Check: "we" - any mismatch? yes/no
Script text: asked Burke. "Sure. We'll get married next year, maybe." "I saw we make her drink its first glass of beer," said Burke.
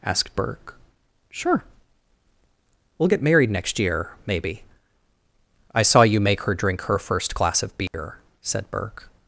yes